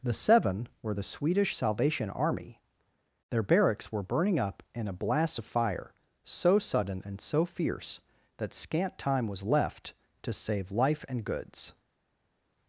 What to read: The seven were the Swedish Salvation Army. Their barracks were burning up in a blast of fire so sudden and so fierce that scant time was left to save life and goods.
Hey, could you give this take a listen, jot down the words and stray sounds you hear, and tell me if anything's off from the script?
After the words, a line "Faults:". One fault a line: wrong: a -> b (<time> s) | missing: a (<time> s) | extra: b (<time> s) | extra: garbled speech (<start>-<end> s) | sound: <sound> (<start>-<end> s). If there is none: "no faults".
The seven were the Swedish Salvation Army. Their barracks were burning up in a blast of fire so sudden and so fierce that scant time was left to save life and goods.
Faults:
no faults